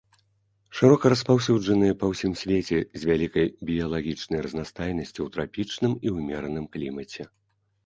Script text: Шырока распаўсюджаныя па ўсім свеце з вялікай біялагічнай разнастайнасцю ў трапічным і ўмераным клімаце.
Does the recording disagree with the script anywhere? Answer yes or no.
no